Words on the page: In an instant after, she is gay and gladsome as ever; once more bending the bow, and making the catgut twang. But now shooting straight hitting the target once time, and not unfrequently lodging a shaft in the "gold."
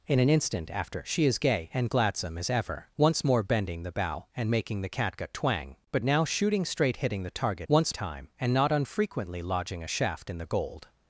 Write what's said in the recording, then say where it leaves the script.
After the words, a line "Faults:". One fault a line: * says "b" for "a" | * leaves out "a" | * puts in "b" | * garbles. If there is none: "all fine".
In an instant after, she is gay and gladsome as ever; once more bending the bow, and making the catgut twang. But now shooting straight hitting the target once time, and not unfrequently lodging a shaft in the "gold."
Faults:
all fine